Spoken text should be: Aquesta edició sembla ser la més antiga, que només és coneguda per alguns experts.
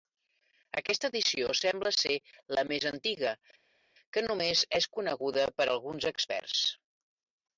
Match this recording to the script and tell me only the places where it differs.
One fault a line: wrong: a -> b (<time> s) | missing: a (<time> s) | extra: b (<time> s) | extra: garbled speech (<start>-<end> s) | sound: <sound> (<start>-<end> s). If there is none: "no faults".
no faults